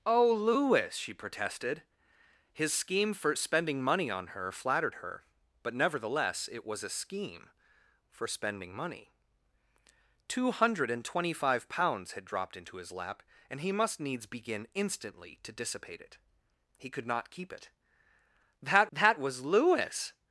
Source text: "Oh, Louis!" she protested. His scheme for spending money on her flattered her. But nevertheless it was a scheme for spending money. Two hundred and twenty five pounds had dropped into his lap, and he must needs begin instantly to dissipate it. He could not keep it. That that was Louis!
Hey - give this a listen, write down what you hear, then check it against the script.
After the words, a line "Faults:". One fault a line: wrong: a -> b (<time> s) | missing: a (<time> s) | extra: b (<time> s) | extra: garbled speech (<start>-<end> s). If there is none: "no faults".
"Oh, Louis!" she protested. His scheme for spending money on her flattered her. But nevertheless it was a scheme for spending money. Two hundred and twenty five pounds had dropped into his lap, and he must needs begin instantly to dissipate it. He could not keep it. That that was Louis!
Faults:
no faults